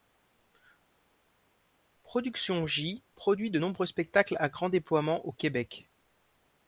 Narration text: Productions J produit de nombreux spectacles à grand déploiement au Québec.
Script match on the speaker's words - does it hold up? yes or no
yes